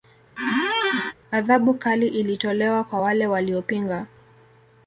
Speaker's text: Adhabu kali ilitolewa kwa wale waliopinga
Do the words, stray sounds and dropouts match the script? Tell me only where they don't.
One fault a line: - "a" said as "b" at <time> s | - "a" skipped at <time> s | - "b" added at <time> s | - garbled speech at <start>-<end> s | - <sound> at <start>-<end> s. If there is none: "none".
- squeak at 0.4-1.1 s